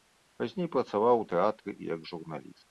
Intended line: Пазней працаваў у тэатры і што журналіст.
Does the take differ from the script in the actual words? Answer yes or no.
yes